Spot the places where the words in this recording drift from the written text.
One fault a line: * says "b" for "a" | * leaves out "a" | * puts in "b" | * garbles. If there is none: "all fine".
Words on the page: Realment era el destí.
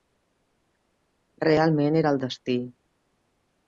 all fine